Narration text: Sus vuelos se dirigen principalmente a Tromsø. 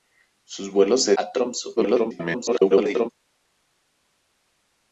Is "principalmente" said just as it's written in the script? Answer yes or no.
no